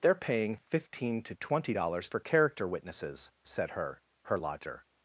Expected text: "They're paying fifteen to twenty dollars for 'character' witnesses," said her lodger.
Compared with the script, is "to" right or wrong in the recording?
right